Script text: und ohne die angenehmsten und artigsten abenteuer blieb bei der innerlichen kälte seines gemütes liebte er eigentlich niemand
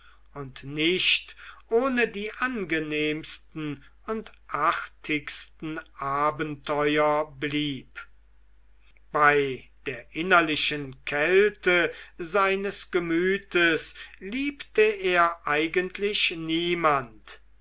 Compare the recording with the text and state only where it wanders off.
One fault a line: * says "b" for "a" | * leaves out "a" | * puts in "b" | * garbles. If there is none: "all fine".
* puts in "nicht"